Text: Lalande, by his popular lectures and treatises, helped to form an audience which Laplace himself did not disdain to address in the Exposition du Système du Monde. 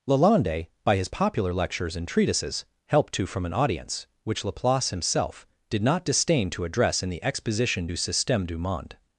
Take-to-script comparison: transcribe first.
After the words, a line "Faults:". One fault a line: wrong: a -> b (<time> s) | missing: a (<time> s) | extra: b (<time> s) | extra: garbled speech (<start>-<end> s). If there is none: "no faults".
Lalande, by his popular lectures and treatises, helped to from an audience which Laplace himself did not disdain to address in the Exposition du Système du Monde.
Faults:
wrong: form -> from (3.2 s)